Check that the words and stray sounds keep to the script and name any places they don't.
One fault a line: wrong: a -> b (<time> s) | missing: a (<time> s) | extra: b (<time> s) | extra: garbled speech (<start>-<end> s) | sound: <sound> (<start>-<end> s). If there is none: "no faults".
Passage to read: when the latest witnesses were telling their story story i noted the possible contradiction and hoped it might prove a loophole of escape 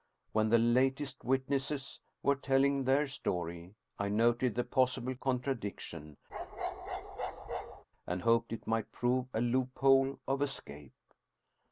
missing: story (3.8 s)
sound: bark (6.3-7.8 s)